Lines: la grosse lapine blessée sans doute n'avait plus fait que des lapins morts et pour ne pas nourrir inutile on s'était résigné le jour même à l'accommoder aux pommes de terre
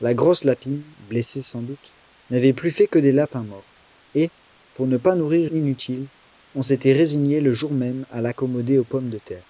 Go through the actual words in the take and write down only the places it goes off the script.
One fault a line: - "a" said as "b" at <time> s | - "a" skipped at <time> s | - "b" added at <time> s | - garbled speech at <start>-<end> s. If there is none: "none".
none